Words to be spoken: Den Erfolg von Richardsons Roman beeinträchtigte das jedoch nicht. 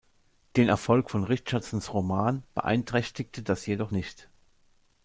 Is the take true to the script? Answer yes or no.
yes